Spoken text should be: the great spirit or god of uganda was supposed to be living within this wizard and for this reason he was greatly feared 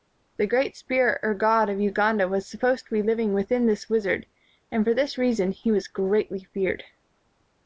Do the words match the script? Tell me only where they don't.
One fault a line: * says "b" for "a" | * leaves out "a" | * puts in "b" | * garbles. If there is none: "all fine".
all fine